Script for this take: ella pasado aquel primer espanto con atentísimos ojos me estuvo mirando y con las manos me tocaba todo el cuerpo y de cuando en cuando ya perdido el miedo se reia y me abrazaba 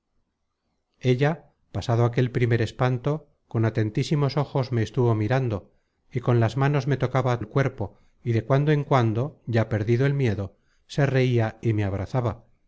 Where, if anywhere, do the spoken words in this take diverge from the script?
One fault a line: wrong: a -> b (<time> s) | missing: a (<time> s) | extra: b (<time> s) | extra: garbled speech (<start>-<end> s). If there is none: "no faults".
missing: todo (7.4 s)